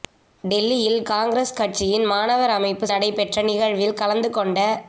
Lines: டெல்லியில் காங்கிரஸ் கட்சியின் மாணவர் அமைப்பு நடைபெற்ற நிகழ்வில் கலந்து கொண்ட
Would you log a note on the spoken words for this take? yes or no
no